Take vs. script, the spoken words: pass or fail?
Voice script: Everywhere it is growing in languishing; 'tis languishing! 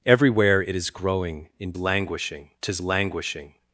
pass